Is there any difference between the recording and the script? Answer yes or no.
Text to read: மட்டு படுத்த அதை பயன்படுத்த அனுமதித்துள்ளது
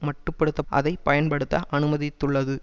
no